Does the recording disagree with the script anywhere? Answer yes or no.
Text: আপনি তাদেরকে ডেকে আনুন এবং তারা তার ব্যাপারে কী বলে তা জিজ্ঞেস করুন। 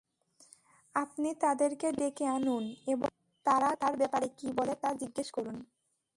no